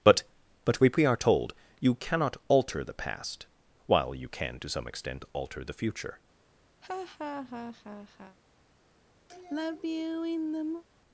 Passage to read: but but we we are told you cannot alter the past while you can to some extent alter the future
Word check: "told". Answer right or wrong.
right